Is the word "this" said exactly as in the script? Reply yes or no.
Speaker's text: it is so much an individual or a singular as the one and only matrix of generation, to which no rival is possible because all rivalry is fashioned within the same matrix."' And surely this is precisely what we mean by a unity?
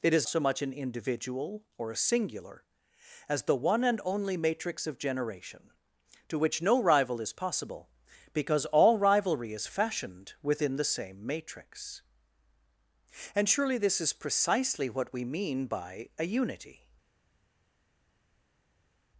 yes